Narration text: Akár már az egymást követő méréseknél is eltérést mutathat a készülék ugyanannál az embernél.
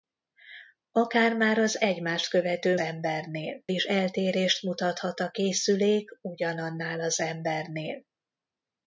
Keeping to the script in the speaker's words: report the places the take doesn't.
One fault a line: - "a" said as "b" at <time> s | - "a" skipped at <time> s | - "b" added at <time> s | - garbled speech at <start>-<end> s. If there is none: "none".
- "méréseknél" said as "embernél" at 2.8 s